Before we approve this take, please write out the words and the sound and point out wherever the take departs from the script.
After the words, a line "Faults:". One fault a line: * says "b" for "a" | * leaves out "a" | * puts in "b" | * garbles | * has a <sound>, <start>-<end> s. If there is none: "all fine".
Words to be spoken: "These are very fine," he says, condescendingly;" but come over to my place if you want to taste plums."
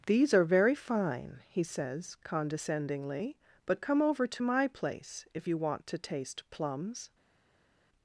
"These are very fine," he says, condescendingly;" but come over to my place if you want to taste plums."
Faults:
all fine